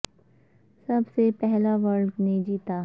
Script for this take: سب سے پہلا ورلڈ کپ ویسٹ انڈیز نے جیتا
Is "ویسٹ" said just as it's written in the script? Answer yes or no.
no